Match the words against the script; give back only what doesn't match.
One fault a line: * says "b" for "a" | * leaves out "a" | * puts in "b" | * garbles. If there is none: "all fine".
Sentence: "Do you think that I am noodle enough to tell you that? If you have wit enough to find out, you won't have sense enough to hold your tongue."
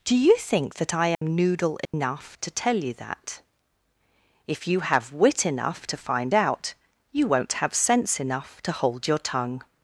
all fine